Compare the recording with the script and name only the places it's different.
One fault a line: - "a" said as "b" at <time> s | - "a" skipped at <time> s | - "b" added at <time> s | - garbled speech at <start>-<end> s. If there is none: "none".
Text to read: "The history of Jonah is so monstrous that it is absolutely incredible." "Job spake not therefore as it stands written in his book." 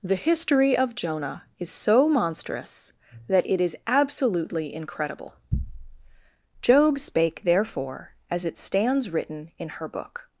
- "not" skipped at 7.4 s
- "his" said as "her" at 9.7 s